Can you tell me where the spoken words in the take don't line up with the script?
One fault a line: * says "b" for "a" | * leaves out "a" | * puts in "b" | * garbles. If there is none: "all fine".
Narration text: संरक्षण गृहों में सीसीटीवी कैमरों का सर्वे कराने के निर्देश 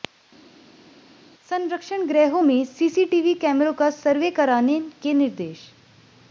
all fine